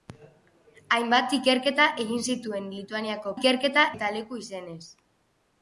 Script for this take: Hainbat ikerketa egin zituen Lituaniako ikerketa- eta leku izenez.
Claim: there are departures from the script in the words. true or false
false